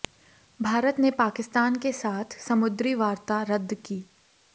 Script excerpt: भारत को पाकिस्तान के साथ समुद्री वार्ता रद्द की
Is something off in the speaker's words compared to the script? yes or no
yes